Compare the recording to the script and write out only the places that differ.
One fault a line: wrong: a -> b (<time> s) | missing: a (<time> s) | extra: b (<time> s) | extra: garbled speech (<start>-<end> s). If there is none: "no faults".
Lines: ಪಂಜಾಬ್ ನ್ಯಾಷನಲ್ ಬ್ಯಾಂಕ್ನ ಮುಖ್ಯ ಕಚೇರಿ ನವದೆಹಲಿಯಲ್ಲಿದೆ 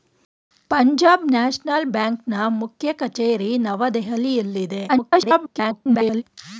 extra: garbled speech (4.9-6.2 s)